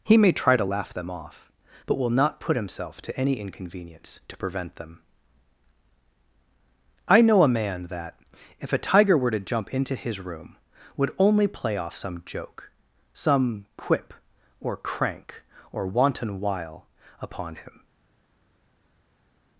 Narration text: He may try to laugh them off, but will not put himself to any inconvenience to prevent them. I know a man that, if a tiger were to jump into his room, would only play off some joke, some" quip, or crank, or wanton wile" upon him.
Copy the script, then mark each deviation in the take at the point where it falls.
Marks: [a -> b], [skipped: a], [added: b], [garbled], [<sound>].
He may try to laugh them off, but will not put himself to any inconvenience to prevent them. I know a man that, if a tiger were to jump into his room, would only play off some joke, some" quip, or crank, or wanton wile" upon him.